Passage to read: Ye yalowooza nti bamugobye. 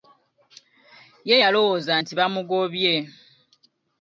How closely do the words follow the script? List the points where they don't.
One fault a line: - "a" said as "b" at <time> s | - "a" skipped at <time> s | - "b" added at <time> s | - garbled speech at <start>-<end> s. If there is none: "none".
none